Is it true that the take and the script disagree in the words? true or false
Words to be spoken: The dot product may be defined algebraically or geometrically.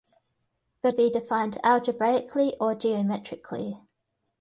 true